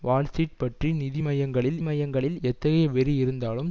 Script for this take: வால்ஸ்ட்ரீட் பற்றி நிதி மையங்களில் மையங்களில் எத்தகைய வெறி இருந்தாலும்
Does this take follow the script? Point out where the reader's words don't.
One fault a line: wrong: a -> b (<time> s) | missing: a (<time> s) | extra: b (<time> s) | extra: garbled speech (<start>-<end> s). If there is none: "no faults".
no faults